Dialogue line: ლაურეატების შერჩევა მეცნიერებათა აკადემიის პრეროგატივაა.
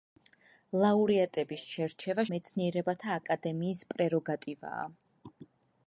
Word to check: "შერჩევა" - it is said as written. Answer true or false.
true